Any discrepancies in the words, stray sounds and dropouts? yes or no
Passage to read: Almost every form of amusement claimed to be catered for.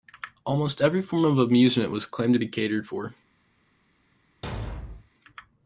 yes